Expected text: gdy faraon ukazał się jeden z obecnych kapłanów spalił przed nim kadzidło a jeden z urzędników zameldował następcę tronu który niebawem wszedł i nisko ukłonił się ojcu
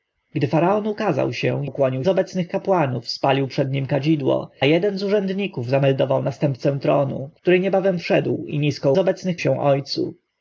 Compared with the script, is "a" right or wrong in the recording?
wrong